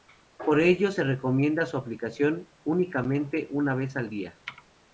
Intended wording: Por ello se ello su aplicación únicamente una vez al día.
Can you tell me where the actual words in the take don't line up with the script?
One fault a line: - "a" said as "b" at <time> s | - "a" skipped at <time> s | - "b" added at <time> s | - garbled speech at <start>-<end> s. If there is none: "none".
- "ello" said as "recomienda" at 1.0 s